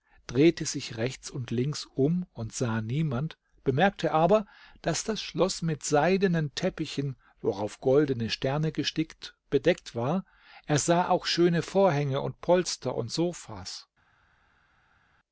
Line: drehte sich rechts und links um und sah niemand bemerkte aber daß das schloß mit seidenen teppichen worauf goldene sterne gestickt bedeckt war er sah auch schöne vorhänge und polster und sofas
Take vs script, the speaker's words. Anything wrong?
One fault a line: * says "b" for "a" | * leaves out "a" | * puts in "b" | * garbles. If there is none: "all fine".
all fine